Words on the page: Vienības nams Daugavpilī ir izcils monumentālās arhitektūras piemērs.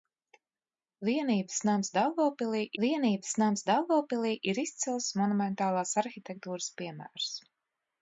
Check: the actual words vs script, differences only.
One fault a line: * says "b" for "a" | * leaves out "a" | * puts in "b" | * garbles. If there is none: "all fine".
* puts in "vienības nams Daugavpilī"